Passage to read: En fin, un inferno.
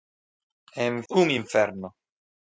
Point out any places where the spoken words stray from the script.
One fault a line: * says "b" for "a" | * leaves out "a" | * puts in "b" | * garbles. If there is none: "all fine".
* leaves out "fin"